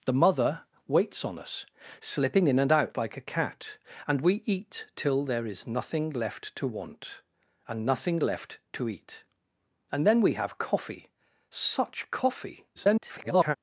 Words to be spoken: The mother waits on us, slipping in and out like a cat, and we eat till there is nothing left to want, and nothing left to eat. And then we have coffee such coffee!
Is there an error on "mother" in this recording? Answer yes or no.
no